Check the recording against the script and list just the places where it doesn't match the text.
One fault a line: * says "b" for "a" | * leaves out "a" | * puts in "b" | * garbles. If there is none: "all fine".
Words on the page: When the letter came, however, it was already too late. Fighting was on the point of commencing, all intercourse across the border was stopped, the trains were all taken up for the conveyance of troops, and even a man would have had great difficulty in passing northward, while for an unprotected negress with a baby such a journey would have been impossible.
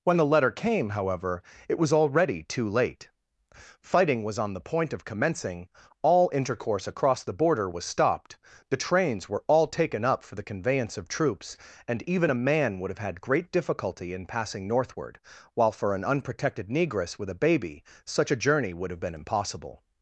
all fine